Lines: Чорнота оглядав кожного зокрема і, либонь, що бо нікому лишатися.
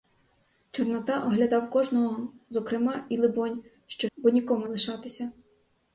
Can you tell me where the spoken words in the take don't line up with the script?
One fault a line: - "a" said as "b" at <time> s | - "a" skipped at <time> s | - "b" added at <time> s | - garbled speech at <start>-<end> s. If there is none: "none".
none